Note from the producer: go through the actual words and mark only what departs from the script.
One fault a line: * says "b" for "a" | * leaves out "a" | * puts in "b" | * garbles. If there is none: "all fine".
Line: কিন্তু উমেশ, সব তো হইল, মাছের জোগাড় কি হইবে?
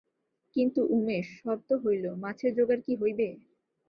all fine